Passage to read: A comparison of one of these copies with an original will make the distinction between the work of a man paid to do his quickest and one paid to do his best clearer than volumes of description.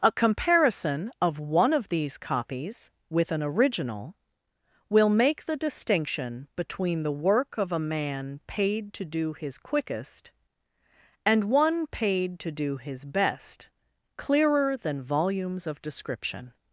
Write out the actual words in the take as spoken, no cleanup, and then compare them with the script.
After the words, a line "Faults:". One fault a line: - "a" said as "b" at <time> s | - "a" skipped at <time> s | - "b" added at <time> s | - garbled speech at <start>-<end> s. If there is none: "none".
A comparison of one of these copies with an original will make the distinction between the work of a man paid to do his quickest and one paid to do his best clearer than volumes of description.
Faults:
none